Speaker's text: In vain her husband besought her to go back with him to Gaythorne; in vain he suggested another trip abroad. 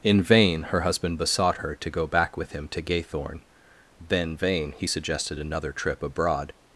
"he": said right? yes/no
yes